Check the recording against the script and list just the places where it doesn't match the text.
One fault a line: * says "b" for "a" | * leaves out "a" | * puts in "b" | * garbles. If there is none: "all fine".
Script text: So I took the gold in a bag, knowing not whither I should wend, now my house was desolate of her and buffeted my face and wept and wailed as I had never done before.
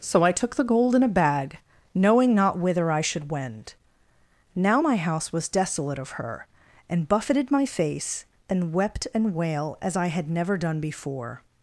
* says "wail" for "wailed"